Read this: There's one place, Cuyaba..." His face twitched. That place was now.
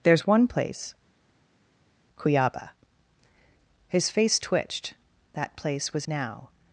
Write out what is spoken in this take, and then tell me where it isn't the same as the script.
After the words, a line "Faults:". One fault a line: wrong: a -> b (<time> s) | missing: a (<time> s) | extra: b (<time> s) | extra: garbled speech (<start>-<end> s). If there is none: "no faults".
There's one place, Cuyaba..." His face twitched. That place was now.
Faults:
no faults